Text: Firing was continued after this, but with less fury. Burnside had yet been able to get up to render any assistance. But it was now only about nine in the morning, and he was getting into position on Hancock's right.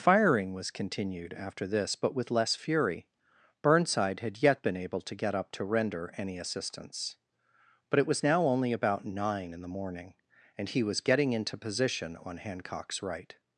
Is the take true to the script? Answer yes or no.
yes